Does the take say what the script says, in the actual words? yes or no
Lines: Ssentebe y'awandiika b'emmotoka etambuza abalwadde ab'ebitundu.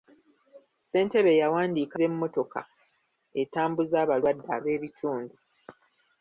yes